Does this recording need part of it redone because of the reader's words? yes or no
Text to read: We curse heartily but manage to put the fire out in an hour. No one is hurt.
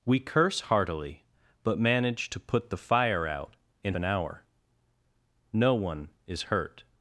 no